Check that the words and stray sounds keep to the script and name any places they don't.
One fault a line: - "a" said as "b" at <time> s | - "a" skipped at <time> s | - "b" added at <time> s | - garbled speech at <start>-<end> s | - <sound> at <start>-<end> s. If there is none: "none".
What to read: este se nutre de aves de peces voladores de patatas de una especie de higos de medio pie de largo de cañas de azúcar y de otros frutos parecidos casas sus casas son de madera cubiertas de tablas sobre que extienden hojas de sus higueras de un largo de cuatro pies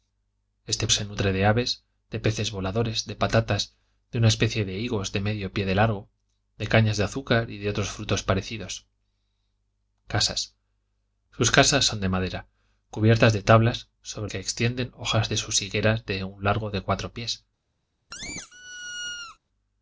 - squeak at 18.1-19.4 s